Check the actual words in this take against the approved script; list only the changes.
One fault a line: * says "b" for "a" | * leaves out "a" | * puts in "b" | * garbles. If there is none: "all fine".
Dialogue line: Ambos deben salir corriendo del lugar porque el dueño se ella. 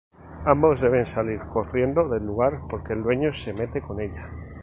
* puts in "mete con"